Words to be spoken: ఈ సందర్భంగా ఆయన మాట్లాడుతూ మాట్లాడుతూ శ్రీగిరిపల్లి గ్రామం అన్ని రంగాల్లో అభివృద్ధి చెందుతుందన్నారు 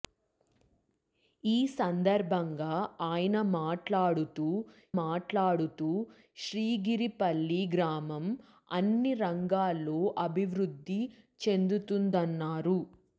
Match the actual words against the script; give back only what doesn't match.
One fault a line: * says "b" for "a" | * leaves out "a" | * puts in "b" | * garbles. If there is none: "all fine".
all fine